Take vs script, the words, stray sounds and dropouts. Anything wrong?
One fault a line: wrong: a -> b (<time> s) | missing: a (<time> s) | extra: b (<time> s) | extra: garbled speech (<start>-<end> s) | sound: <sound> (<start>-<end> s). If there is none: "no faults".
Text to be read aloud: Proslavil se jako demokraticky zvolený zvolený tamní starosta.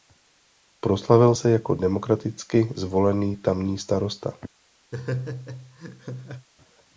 missing: zvolený (3.4 s)
sound: laugh (4.9-6.5 s)